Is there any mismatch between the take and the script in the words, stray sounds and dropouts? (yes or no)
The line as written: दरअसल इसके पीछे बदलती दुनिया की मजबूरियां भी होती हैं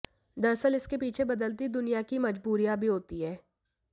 no